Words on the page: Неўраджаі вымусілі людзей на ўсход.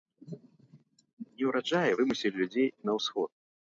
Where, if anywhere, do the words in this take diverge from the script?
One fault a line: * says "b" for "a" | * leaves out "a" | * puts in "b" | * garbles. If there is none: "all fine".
all fine